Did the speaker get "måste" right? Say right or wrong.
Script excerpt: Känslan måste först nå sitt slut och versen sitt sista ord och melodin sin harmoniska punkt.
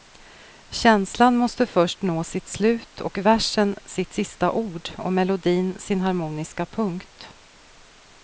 right